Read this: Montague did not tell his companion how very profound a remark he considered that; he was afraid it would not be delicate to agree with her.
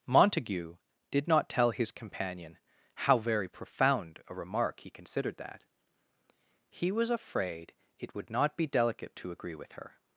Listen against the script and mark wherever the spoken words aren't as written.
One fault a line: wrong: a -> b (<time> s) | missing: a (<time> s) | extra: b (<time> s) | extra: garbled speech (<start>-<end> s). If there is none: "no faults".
no faults